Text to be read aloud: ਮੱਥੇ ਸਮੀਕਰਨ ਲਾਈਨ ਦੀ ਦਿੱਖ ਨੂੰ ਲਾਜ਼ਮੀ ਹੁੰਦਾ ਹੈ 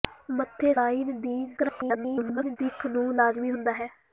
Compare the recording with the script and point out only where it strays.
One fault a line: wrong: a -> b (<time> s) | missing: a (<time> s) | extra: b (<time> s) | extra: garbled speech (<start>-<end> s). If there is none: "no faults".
missing: ਸਮੀਕਰਨ (0.7 s)
extra: garbled speech (1.6-2.6 s)